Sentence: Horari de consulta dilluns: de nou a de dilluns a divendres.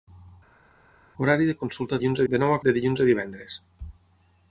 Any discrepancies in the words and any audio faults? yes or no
no